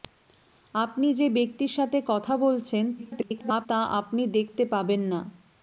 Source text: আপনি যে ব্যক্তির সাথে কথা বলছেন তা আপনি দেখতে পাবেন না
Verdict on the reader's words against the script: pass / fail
fail